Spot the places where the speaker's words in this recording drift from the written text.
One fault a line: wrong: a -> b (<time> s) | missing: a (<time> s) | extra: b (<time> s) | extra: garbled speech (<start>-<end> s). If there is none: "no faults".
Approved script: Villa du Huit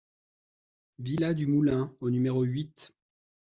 extra: Moulin au numéro (1.4 s)